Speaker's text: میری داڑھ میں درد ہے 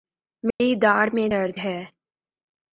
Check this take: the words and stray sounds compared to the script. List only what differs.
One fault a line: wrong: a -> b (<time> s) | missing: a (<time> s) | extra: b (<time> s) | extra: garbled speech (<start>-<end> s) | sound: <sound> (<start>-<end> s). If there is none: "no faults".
sound: dropout (0.5-0.6 s)